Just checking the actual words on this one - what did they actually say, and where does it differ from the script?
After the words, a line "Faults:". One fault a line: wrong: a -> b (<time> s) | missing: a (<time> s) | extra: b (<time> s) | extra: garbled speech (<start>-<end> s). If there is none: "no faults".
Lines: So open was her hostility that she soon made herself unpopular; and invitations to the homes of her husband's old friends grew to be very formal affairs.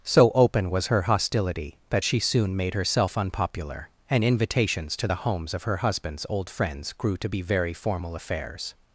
So open was her hostility that she soon made herself unpopular; and invitations to the homes of her husband's old friends grew to be very formal affairs.
Faults:
no faults